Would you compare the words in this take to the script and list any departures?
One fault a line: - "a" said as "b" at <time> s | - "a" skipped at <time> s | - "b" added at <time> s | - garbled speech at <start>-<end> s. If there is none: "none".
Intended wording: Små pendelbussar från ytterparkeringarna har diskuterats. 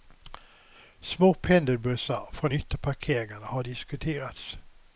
none